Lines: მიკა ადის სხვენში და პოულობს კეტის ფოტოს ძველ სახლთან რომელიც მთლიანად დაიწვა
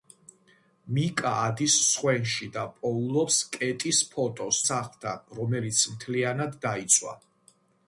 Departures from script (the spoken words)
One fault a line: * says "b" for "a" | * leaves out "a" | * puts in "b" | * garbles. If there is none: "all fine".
* leaves out "ძველ"